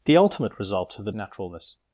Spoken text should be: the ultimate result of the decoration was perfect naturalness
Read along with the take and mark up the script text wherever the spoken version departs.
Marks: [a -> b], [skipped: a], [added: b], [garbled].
the ultimate result of the [skipped: decoration was perfect] naturalness